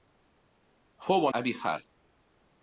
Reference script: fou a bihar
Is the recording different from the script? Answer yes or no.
no